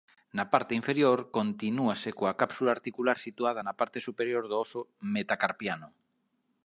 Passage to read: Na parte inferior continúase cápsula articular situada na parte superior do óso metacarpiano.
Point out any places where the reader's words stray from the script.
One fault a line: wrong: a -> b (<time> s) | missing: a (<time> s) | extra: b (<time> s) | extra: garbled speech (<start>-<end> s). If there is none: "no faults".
extra: coa (2.2 s)